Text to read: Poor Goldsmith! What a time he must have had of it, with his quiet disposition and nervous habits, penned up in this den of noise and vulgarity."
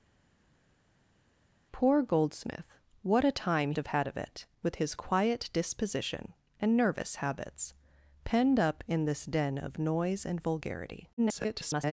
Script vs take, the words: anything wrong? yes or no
yes